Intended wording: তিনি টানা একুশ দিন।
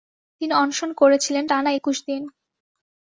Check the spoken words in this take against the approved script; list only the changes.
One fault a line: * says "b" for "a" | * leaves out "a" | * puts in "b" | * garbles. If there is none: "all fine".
* puts in "অনশন করেছিলেন"